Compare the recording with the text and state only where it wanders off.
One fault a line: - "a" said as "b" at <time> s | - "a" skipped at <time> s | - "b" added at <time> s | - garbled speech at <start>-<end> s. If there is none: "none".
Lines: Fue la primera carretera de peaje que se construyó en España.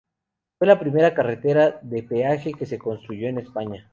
none